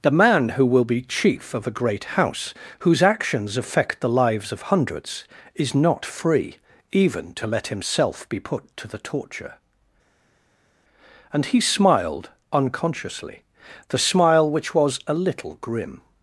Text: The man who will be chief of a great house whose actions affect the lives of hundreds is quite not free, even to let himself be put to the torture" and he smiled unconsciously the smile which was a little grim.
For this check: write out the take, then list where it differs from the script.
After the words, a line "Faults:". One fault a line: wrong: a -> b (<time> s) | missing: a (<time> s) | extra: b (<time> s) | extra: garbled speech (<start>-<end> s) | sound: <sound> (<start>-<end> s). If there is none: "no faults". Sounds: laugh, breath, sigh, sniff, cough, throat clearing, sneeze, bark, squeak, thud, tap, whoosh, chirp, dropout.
The man who will be chief of a great house whose actions affect the lives of hundreds is not free, even to let himself be put to the torture" and he smiled unconsciously the smile which was a little grim.
Faults:
missing: quite (5.8 s)